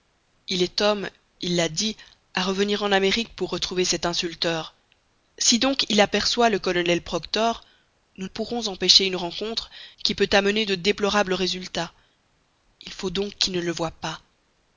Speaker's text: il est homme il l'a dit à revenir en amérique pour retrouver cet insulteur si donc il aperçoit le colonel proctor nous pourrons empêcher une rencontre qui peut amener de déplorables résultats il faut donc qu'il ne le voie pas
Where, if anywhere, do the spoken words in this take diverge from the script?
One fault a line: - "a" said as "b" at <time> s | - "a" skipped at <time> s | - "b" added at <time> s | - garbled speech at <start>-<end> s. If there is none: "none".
none